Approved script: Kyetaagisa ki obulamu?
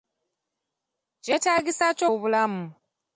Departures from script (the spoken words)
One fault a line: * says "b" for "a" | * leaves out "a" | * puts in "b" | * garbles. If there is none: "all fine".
all fine